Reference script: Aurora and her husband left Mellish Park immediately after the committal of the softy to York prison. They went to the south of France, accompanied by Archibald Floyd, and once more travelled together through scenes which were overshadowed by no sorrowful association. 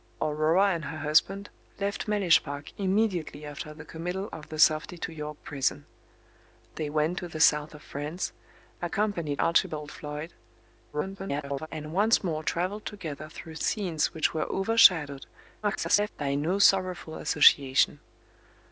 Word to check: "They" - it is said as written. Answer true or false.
true